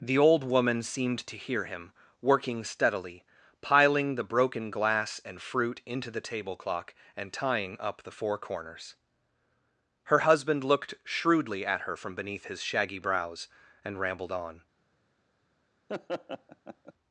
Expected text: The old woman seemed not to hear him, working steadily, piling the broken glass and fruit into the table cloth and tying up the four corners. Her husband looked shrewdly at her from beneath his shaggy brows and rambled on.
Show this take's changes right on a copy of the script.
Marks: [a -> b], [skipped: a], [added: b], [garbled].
The old woman seemed [skipped: not] to hear him, working steadily, piling the broken glass and fruit into the table [cloth -> clock] and tying up the four corners. Her husband looked shrewdly at her from beneath his shaggy brows and rambled on.